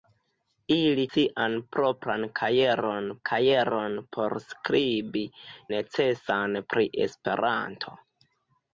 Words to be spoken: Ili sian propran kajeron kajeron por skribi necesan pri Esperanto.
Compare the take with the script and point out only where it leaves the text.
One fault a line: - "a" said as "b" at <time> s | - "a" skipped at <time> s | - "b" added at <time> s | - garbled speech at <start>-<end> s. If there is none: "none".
none